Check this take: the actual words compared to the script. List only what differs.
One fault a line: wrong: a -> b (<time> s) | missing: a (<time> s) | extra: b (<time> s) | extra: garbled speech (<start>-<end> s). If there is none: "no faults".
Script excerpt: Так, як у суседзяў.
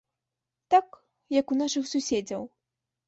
extra: нашых (1.6 s)